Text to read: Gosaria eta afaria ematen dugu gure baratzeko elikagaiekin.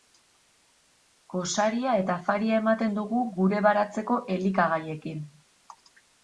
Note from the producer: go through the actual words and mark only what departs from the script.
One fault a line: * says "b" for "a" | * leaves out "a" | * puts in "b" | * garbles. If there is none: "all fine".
all fine